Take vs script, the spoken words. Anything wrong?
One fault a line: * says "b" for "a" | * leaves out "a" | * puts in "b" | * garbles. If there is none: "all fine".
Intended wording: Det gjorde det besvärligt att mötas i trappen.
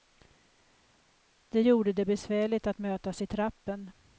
all fine